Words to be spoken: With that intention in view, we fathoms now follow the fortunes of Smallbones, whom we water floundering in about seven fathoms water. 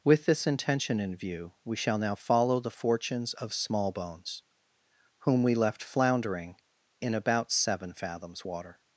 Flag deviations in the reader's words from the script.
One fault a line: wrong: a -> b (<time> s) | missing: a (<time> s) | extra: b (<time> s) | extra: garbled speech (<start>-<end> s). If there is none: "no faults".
wrong: that -> this (0.2 s)
wrong: fathoms -> shall (1.8 s)
wrong: water -> left (5.5 s)